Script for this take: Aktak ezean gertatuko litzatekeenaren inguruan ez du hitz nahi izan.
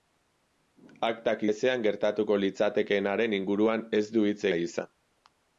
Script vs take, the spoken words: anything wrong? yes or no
no